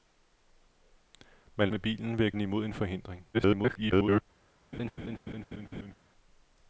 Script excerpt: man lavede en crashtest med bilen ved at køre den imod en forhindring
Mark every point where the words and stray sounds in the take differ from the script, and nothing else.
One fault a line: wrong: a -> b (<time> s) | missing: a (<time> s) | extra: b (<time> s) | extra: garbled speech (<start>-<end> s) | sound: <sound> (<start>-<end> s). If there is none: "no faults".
missing: lavede en crashtest (1.7 s)
missing: køre (2.3 s)
extra: garbled speech (3.3-4.2 s)
sound: laugh (4.7-5.9 s)